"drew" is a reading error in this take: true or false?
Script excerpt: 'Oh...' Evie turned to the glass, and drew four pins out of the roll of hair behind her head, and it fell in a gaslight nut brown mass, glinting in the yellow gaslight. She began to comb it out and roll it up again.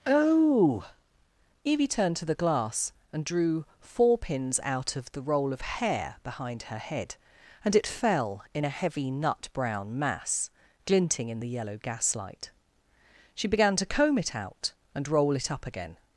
false